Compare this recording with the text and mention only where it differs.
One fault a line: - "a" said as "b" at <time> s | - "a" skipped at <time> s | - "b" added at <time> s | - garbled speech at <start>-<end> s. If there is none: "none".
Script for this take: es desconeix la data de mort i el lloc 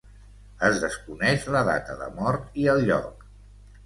none